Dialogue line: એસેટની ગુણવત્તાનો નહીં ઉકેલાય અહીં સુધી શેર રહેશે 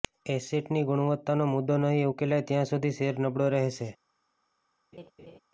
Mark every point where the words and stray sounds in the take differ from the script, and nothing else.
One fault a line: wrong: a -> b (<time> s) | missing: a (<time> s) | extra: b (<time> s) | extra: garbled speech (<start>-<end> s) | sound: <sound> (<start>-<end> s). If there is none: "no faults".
extra: મુદ્દો (1.5 s)
wrong: અહીં -> ત્યાં (2.5 s)
extra: નબળો (3.2 s)
sound: laugh (4.9-5.4 s)